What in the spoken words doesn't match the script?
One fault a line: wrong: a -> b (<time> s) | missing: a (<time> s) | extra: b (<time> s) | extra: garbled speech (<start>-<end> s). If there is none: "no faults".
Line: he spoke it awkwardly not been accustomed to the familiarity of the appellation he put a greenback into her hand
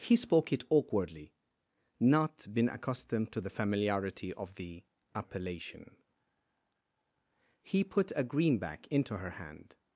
no faults